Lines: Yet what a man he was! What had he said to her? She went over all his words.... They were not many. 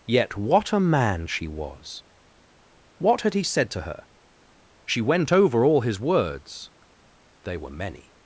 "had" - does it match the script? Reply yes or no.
yes